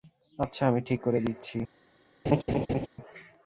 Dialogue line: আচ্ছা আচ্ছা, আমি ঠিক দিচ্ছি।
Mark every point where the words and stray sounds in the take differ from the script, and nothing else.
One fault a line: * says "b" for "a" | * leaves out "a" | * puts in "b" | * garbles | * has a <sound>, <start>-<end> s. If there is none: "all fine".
* leaves out "আচ্ছা"
* puts in "করে"
* has a laugh, 2.2-2.9 s